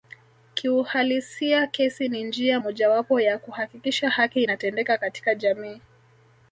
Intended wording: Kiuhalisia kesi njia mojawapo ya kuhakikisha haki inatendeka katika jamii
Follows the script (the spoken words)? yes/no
no